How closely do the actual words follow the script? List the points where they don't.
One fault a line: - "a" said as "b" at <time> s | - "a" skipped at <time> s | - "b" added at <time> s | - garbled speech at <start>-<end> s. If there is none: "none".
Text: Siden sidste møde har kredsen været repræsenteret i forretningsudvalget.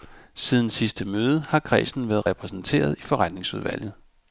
none